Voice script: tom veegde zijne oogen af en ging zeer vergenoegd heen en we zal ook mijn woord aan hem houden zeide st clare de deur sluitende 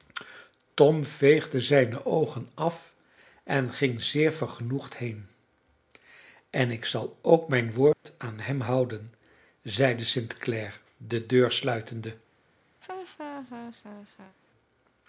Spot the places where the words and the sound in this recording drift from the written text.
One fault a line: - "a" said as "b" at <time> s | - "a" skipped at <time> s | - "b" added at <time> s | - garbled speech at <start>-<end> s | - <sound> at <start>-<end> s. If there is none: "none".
- "we" said as "ik" at 6.7 s
- dropout at 7.9-8.1 s
- laugh at 12.8-14.4 s